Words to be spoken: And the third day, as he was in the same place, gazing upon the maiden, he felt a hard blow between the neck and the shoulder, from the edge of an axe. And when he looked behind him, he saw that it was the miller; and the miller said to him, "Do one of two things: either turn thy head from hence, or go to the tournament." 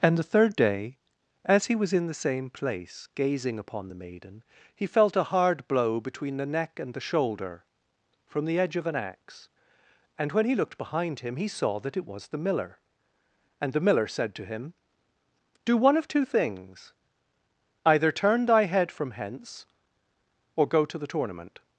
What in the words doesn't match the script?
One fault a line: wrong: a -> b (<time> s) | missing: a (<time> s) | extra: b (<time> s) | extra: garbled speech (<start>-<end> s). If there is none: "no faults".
no faults